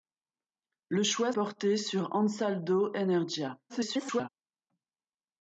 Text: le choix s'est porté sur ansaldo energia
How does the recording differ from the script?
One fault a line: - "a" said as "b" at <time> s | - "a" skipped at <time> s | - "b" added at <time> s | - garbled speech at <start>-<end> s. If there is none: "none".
- "s'est" skipped at 1.3 s
- garbled speech at 3.7-4.3 s